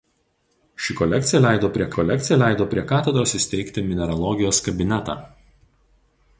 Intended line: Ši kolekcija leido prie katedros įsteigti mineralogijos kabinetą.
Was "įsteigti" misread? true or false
false